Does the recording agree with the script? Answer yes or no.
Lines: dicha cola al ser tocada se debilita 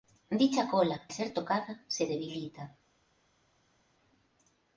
no